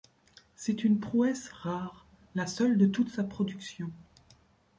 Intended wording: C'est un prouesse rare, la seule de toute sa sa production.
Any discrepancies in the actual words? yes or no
yes